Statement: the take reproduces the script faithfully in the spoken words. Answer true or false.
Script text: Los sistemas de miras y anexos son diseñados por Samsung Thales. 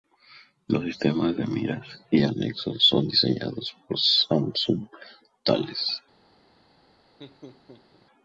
true